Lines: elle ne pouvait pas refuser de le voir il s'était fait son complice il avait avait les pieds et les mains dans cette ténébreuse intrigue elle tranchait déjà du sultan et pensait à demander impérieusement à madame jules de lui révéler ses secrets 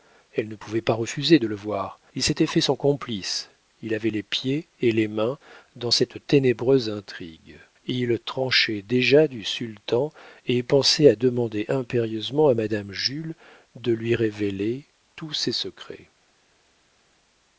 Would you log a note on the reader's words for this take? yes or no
yes